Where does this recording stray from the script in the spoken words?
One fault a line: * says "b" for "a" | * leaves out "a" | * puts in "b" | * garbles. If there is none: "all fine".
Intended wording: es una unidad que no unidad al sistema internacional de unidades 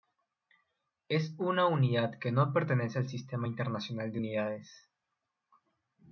* says "pertenece" for "unidad"